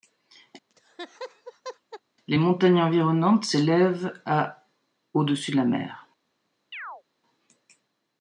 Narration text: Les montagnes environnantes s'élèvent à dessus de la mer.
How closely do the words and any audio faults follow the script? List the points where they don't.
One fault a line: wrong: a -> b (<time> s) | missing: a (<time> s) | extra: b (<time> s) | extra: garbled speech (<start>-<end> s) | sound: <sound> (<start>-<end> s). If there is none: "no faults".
sound: laugh (0.7-2.0 s)
extra: au (5.1 s)
sound: chirp (6.7-7.0 s)